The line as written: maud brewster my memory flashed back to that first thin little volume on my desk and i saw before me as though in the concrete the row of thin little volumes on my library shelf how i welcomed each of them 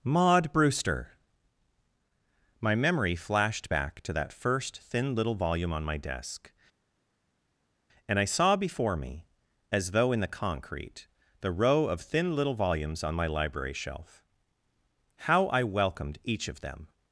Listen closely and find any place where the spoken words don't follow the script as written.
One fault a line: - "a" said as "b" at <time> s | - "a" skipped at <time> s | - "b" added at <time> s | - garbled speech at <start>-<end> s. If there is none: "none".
none